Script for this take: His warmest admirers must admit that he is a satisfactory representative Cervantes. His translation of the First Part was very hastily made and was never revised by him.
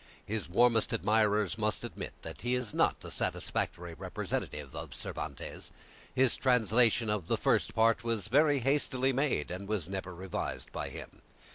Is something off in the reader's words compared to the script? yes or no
yes